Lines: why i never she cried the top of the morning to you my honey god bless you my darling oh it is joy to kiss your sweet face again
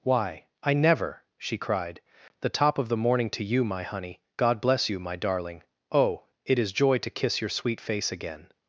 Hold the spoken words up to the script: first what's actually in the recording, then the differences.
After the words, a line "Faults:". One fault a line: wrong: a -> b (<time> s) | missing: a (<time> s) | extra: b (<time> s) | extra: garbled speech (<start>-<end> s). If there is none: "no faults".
why i never she cried the top of the morning to you my honey god bless you my darling oh it is joy to kiss your sweet face again
Faults:
no faults